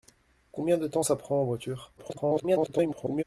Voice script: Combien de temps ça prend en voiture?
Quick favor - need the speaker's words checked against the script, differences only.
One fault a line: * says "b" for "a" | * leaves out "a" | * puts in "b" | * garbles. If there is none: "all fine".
* garbles